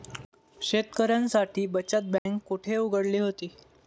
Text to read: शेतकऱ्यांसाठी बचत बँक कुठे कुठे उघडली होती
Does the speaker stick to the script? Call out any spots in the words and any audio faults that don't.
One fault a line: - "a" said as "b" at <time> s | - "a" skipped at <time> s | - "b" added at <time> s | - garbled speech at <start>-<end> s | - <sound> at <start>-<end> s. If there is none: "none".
- dropout at 2.2-2.3 s
- "कुठे" skipped at 2.8 s